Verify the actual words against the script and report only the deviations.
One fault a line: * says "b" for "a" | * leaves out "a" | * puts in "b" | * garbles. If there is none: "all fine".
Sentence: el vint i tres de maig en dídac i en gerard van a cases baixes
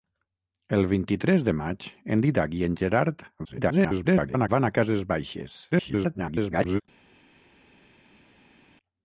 * garbles
* garbles